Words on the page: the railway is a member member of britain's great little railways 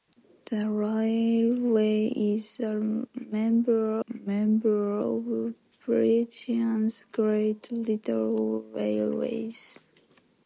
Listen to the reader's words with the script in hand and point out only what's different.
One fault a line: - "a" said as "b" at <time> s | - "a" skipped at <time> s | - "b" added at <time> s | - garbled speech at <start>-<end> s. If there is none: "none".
none